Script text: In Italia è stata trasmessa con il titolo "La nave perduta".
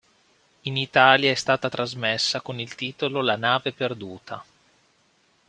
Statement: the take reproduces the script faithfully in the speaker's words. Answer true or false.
true